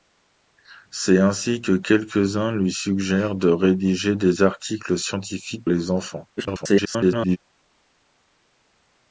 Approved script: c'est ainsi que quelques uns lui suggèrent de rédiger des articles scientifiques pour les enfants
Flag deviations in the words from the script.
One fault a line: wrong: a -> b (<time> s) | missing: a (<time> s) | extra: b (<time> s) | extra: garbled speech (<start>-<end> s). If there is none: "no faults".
missing: pour (5.7 s)
extra: garbled speech (6.4-7.4 s)